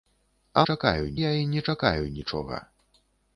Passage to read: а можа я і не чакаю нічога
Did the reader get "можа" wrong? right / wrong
wrong